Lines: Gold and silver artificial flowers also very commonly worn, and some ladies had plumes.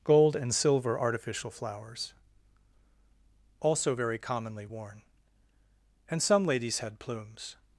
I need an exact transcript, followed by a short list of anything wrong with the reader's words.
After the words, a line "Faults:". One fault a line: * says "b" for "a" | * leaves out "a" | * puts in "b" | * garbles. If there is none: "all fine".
Gold and silver artificial flowers also very commonly worn, and some ladies had plumes.
Faults:
all fine